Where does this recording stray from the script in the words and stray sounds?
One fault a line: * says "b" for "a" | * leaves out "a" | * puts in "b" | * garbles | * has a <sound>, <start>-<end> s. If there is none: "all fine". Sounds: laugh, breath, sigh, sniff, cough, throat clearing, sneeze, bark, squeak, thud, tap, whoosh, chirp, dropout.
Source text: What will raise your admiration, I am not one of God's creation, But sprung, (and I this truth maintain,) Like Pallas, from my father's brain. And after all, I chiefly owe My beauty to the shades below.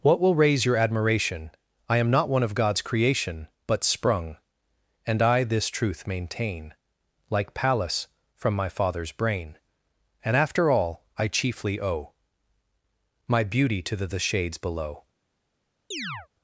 * puts in "the"
* has a chirp, 15.9-16.3 s